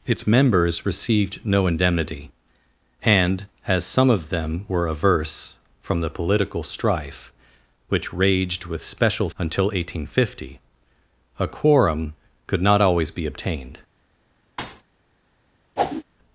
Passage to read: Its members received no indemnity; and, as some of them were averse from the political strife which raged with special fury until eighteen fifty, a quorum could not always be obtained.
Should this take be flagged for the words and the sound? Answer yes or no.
yes